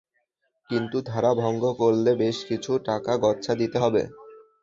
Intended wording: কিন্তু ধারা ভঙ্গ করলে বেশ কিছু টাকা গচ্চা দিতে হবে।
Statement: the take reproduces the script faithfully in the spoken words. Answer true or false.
true